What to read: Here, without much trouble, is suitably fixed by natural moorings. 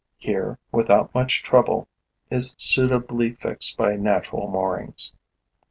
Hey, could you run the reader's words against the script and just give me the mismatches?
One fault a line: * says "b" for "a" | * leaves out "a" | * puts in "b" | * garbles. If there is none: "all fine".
all fine